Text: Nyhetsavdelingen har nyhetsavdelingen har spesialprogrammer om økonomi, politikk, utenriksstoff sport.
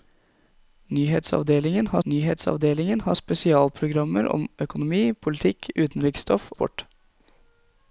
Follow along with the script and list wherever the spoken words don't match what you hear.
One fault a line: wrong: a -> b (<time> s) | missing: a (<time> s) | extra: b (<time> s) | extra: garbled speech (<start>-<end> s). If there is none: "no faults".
no faults